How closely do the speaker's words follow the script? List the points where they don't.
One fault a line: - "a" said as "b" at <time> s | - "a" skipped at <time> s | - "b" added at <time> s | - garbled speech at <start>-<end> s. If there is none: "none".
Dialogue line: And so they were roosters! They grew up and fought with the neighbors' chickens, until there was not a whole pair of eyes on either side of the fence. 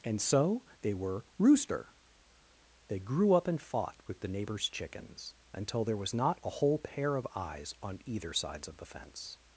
- "roosters" said as "rooster" at 1.4 s
- "side" said as "sides" at 8.3 s